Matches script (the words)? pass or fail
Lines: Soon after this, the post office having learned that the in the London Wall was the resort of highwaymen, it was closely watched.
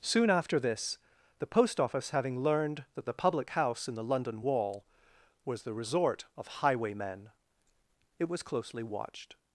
fail